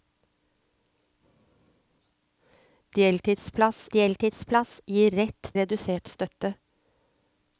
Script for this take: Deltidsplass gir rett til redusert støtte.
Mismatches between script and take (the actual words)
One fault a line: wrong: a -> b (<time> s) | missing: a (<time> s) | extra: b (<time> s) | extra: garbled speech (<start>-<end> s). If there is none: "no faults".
extra: deltidsplass (3.9 s)
missing: til (5.5 s)